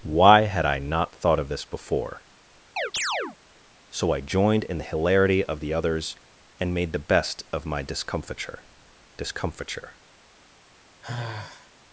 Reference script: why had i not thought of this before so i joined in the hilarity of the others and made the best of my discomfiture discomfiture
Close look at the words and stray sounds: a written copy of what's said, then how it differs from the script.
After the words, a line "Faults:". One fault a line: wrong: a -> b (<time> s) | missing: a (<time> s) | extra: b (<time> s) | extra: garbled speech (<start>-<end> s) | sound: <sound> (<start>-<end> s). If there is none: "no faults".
why had i not thought of this before so i joined in the hilarity of the others and made the best of my discomfiture discomfiture
Faults:
sound: chirp (2.8-3.4 s)
sound: sigh (11.0-11.7 s)